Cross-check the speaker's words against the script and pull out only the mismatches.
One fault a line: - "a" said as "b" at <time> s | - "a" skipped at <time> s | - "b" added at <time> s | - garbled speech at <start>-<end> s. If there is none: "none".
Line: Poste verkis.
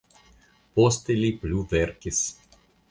- "li plu" added at 1.2 s